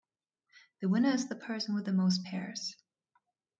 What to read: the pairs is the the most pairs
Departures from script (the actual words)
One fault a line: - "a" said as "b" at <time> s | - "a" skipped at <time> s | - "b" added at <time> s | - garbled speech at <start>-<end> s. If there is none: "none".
- "pairs" said as "winner" at 0.9 s
- "person with" added at 1.4 s